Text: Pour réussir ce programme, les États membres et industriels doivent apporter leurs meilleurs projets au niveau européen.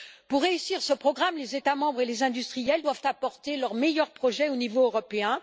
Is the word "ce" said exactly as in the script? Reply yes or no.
yes